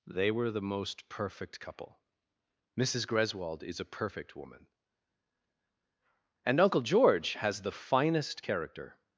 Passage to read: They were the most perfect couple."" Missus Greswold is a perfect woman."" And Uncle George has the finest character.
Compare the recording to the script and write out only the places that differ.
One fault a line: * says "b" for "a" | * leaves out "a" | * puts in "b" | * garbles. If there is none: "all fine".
all fine